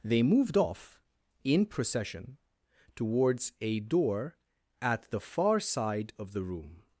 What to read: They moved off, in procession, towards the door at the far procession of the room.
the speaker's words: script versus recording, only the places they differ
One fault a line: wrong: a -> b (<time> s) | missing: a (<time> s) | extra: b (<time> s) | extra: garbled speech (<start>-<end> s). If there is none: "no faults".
wrong: the -> a (3.6 s)
wrong: procession -> side (5.6 s)